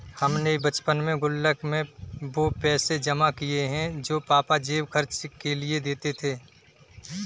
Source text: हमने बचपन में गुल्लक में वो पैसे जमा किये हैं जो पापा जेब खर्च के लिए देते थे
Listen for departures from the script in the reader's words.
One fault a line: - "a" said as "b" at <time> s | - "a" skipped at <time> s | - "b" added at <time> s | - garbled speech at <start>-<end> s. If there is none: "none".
none